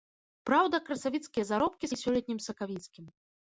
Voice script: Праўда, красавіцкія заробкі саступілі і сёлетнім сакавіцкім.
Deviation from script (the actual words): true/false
true